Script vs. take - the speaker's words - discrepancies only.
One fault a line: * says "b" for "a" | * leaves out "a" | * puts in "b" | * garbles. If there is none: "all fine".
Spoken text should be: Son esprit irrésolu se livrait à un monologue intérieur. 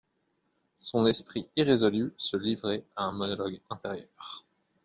all fine